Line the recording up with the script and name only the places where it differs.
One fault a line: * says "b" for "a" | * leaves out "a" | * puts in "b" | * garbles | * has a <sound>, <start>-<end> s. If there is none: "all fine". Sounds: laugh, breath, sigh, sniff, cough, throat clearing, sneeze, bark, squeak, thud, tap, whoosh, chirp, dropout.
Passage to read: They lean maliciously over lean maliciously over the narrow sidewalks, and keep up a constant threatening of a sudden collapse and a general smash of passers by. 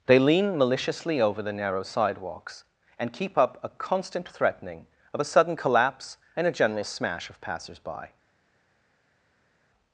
* leaves out "lean maliciously over"